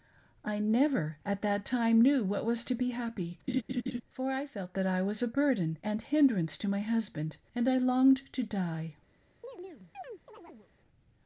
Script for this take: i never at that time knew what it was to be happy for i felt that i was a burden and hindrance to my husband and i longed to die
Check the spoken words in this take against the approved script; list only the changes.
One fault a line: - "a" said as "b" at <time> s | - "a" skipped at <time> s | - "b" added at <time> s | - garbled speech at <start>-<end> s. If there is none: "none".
none